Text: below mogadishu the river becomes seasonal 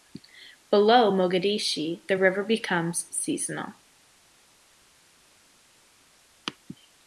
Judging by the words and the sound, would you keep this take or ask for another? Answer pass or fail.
pass